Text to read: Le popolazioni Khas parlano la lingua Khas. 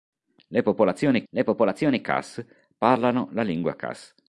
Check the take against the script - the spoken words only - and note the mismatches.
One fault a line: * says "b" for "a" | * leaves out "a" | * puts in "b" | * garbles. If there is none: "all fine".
* puts in "le popolazioni"